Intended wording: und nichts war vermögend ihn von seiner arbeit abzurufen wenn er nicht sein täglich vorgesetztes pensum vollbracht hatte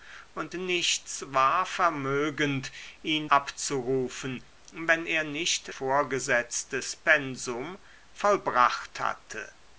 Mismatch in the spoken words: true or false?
true